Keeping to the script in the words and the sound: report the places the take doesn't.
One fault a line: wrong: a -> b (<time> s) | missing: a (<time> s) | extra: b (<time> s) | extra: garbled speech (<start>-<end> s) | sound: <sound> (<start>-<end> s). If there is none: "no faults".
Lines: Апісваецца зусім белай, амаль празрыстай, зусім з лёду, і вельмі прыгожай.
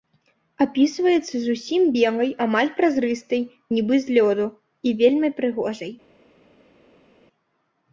wrong: зусім -> нібы (3.8 s)